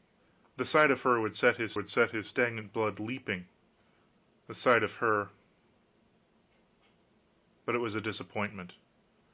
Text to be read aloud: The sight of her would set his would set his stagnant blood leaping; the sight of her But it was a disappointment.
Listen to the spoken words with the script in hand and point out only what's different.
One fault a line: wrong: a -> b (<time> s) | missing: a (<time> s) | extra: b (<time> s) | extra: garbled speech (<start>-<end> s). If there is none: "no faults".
no faults